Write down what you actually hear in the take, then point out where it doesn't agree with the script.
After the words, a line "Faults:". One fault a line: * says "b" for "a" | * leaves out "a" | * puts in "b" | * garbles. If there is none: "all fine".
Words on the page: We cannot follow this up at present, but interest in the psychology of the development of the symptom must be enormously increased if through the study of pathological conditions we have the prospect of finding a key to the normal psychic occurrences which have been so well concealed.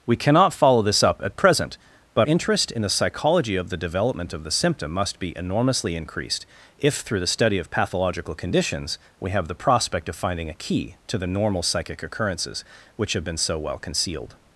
We cannot follow this up at present, but interest in the psychology of the development of the symptom must be enormously increased if through the study of pathological conditions we have the prospect of finding a key to the normal psychic occurrences which have been so well concealed.
Faults:
all fine